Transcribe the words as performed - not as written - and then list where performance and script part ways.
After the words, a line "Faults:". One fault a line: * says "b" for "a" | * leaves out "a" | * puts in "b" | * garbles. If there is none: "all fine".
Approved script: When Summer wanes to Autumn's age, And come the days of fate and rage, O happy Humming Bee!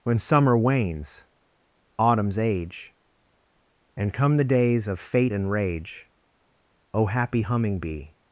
When Summer wanes Autumn's age, And come the days of fate and rage, O happy Humming Bee!
Faults:
* leaves out "to"